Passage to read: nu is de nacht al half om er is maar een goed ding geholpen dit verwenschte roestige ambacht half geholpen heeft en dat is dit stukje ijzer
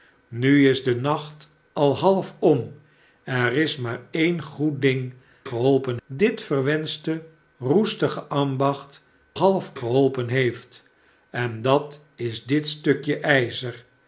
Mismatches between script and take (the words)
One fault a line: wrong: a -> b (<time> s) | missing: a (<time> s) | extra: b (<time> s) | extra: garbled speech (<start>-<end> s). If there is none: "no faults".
no faults